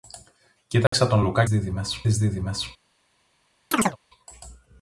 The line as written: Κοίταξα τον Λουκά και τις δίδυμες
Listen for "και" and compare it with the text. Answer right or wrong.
wrong